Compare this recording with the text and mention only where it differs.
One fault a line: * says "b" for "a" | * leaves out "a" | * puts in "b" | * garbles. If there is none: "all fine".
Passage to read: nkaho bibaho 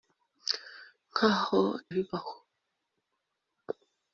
all fine